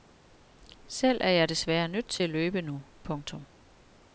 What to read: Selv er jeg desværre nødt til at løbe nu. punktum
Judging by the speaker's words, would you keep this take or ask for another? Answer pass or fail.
pass